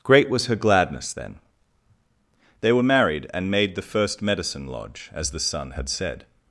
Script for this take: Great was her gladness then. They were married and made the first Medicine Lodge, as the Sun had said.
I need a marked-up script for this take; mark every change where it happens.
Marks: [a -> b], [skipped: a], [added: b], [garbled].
Great was her gladness then. They were married and made the first Medicine Lodge, as the Sun had said.